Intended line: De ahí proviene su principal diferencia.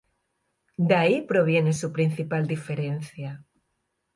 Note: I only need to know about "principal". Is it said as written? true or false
true